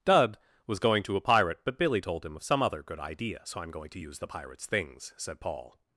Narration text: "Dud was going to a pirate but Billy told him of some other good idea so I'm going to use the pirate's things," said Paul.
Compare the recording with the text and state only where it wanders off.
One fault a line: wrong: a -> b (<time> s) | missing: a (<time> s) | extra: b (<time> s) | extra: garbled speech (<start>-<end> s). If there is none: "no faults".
no faults